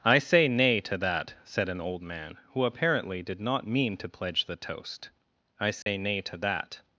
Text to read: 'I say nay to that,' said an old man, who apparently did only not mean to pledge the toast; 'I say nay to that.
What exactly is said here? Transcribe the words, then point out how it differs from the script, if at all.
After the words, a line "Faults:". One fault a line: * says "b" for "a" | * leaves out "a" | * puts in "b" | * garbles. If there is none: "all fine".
'I say nay to that,' said an old man, who apparently did not mean to pledge the toast; 'I say nay to that.
Faults:
* leaves out "only"